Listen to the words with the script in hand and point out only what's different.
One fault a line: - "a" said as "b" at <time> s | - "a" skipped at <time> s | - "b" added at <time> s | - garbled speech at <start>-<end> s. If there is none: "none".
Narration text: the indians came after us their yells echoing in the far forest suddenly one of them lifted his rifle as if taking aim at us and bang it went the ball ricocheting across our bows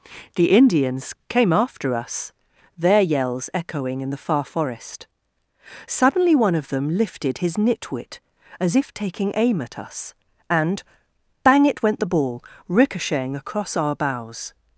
- "rifle" said as "nitwit" at 7.6 s